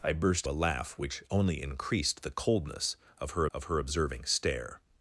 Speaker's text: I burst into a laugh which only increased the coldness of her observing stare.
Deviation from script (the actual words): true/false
true